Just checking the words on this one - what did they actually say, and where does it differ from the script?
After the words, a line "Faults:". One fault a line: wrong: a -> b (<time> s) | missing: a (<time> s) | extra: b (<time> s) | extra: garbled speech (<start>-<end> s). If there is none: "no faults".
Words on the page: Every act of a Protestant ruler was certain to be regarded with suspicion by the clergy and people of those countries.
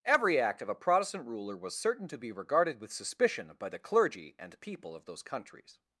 Every act of a Protestant ruler was certain to be regarded with suspicion by the clergy and people of those countries.
Faults:
no faults